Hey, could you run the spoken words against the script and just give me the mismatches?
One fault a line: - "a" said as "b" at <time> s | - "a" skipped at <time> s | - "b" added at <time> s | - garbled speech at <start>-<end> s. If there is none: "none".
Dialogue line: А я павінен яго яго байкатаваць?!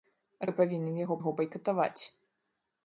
none